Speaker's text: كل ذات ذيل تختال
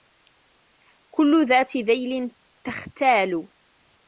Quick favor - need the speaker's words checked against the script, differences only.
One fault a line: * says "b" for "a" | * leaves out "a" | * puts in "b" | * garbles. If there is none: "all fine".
all fine